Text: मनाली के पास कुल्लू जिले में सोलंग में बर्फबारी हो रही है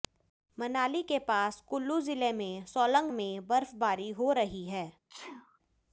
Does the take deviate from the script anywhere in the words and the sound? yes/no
yes